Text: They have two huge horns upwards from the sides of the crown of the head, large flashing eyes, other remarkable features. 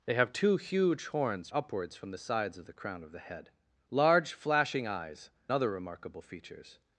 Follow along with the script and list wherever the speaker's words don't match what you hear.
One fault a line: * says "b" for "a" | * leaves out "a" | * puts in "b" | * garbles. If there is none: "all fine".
all fine